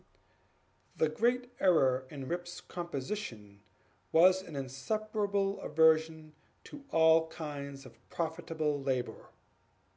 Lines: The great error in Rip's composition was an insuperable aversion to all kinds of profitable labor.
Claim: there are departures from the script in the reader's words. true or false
false